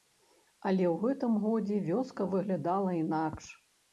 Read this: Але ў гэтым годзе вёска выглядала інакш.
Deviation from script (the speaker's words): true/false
false